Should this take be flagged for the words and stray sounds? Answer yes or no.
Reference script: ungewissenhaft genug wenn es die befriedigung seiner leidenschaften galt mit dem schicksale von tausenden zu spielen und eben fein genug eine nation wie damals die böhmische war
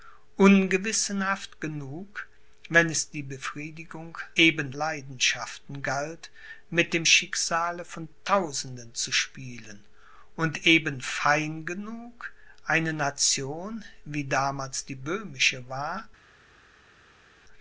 yes